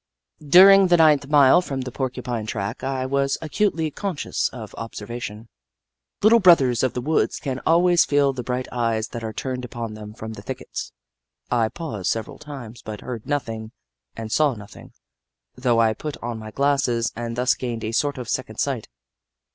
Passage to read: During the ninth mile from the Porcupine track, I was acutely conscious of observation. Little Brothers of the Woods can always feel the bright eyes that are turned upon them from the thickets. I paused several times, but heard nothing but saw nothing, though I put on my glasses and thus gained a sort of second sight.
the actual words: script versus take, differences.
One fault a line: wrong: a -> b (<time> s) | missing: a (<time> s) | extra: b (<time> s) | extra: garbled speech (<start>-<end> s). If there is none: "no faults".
wrong: but -> and (14.2 s)